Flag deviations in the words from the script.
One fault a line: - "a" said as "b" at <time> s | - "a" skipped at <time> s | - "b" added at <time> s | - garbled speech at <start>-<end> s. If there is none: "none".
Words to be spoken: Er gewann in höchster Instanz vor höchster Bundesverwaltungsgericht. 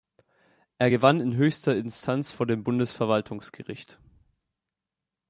- "höchster" said as "dem" at 2.5 s